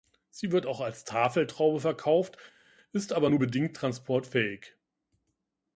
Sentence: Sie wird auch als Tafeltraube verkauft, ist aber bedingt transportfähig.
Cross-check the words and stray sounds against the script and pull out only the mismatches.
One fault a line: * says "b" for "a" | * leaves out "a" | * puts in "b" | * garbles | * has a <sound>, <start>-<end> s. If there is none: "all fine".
* puts in "nur"